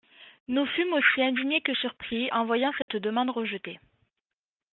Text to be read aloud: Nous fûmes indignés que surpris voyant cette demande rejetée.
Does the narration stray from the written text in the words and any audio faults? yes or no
yes